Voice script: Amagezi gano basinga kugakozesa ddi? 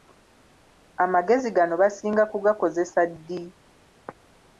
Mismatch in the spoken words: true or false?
false